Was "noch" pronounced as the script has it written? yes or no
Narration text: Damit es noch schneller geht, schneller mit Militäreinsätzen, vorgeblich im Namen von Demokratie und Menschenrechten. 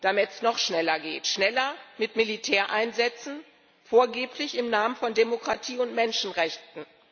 yes